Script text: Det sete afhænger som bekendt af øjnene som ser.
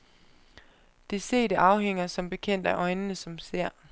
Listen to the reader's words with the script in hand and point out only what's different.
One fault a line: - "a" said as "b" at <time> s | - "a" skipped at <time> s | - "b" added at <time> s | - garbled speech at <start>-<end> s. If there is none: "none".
none